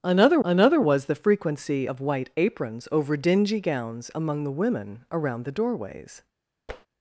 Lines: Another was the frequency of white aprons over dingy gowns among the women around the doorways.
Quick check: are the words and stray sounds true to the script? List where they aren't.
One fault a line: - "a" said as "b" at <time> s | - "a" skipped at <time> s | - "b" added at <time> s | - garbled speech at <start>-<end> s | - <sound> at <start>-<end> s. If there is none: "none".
- "another" added at 0.4 s
- tap at 6.7-6.9 s